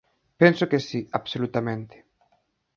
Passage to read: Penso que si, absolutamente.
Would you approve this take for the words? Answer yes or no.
yes